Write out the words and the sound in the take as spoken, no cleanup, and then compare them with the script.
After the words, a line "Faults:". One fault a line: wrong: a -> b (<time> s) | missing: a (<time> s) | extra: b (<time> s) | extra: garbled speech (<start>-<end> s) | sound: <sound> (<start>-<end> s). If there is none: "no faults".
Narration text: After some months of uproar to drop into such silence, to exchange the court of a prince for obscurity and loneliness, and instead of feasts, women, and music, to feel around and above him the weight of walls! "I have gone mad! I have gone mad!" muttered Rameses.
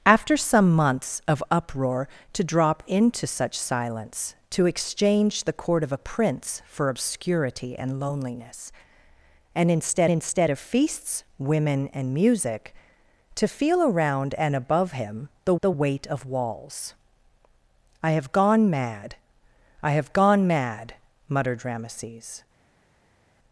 After some months of uproar to drop into such silence, to exchange the court of a prince for obscurity and loneliness, and instead instead of feasts, women, and music, to feel around and above him the the weight of walls! "I have gone mad! I have gone mad!" muttered Rameses.
Faults:
extra: instead (10.1 s)
extra: the (15.6 s)